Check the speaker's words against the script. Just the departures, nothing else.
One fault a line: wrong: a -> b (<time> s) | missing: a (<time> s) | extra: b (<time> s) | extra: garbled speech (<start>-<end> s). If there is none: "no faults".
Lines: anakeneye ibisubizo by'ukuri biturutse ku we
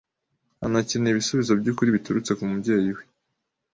extra: mubyeyi (2.5 s)